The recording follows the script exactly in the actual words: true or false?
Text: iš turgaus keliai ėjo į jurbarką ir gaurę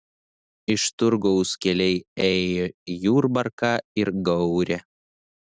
true